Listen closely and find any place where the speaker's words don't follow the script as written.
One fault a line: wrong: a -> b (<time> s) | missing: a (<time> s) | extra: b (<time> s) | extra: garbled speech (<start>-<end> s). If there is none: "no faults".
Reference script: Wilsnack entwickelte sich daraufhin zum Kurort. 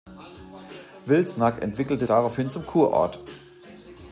missing: sich (2.1 s)